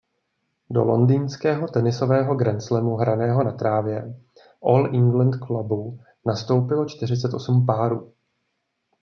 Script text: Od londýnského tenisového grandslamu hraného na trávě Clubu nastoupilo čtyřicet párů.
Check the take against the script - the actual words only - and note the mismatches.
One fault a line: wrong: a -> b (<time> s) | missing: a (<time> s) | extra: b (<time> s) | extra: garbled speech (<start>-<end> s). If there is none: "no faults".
wrong: Od -> Do (0.7 s)
extra: All England (4.6 s)
extra: osm (7.3 s)